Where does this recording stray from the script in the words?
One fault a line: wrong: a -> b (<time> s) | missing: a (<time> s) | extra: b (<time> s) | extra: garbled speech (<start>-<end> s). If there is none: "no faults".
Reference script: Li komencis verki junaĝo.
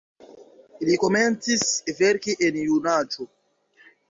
extra: en (2.5 s)